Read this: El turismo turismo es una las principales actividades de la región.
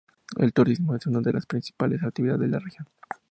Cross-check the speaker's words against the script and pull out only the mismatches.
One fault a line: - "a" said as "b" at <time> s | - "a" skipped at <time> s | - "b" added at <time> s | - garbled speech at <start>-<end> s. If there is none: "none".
- "turismo" skipped at 0.9 s
- "de" added at 1.2 s